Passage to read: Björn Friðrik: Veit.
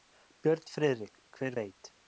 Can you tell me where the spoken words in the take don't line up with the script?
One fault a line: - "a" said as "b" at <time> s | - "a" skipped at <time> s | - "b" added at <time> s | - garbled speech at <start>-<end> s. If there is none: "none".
- "Hver" added at 1.4 s